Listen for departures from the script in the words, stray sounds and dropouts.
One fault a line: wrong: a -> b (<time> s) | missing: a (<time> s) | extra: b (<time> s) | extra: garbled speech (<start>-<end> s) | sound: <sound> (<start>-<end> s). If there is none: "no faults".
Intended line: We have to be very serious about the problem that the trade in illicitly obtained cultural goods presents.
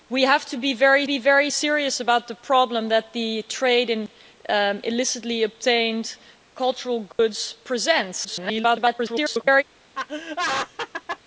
extra: be very (1.0 s)
sound: dropout (7.1-7.2 s)
extra: garbled speech (8.2-9.6 s)
sound: laugh (9.9-11.2 s)